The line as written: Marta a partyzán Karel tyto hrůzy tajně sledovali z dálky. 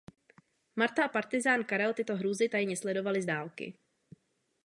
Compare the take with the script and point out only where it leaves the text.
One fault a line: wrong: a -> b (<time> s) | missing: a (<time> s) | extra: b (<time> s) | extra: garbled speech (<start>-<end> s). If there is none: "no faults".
no faults